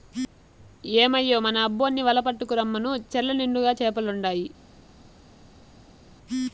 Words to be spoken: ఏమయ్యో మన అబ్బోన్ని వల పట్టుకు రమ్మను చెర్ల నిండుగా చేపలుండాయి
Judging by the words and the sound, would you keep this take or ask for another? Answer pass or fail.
pass